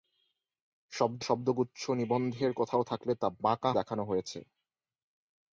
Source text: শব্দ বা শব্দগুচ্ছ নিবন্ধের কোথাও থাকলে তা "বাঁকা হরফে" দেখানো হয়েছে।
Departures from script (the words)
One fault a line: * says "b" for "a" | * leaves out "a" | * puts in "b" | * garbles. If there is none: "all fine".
* leaves out "বা"
* leaves out "হরফে"